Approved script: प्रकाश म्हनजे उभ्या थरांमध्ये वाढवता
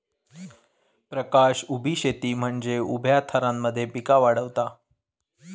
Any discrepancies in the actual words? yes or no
yes